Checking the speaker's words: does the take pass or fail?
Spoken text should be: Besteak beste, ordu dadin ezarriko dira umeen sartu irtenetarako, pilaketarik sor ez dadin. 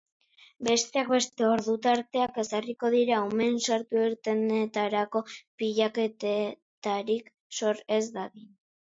fail